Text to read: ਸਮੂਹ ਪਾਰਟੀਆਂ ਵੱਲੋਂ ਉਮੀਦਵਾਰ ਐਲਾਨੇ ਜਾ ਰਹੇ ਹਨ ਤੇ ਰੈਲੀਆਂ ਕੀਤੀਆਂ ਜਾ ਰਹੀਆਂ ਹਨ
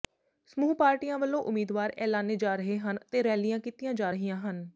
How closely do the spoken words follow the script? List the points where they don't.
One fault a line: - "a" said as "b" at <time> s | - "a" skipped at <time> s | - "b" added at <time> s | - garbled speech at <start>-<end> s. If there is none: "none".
none